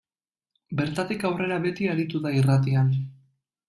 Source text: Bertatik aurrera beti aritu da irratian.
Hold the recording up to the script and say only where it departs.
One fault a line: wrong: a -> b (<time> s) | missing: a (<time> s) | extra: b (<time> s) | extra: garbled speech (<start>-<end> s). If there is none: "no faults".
no faults